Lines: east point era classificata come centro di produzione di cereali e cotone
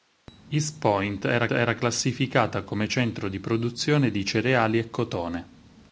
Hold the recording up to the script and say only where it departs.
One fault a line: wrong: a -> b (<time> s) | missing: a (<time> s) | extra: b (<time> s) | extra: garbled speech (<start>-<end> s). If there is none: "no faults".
extra: era (1.5 s)